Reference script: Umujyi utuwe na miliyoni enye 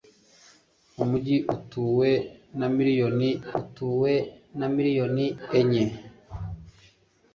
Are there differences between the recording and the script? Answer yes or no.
yes